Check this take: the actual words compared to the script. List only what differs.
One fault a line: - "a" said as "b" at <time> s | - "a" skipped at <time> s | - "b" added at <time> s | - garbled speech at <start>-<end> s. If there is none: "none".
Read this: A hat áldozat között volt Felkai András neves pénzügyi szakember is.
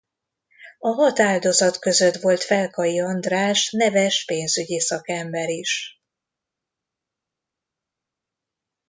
none